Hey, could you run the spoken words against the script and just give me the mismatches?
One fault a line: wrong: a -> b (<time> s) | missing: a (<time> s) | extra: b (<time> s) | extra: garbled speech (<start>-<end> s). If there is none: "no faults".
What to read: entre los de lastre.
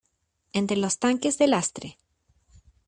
extra: tanques (1.0 s)